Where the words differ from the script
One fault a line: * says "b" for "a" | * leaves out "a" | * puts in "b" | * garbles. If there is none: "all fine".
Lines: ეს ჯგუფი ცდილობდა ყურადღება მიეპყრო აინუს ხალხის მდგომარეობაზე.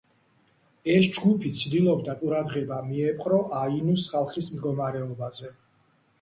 all fine